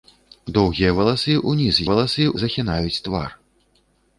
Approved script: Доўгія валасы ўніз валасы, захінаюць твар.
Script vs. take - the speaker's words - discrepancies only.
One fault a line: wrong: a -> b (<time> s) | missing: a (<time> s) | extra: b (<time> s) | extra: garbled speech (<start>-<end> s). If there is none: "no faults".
no faults